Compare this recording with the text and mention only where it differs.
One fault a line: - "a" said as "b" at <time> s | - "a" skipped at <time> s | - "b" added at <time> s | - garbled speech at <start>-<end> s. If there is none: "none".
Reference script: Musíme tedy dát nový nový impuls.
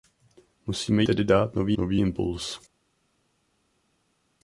none